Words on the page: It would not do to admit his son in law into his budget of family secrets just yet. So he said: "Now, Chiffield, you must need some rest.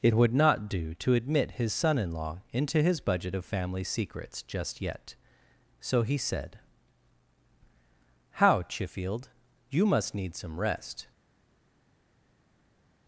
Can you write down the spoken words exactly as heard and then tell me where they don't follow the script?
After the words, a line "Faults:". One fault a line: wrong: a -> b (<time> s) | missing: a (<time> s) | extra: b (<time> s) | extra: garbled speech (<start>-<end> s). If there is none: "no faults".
It would not do to admit his son in law into his budget of family secrets just yet. So he said: "How, Chiffield, you must need some rest.
Faults:
wrong: Now -> How (8.3 s)